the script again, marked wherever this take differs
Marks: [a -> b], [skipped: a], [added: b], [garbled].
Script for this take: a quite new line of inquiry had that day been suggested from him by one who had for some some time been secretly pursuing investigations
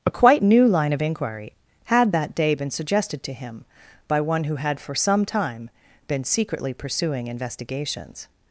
a quite new line of inquiry had that day been suggested [from -> to] him by one who had for some [skipped: some] time been secretly pursuing investigations